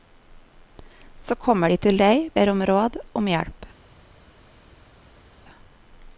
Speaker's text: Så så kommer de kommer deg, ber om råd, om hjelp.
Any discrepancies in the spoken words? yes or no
yes